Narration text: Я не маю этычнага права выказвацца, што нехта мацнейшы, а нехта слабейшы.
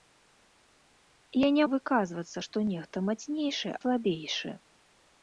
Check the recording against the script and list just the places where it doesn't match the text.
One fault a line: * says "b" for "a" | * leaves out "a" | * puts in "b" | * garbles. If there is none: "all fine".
* leaves out "маю этычнага права"
* leaves out "а нехта"